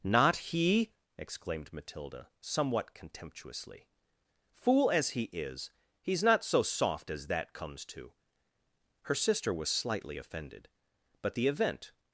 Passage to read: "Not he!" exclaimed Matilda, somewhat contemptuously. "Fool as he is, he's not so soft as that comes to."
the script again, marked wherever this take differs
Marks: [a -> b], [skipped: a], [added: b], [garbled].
"Not he!" exclaimed Matilda, somewhat contemptuously. "Fool as he is, he's not so soft as that comes to." [added: Her sister was slightly offended but the event]